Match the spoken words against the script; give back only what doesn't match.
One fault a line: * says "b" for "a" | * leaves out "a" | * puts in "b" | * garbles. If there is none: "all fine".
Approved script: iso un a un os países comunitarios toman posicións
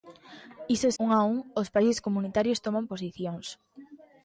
all fine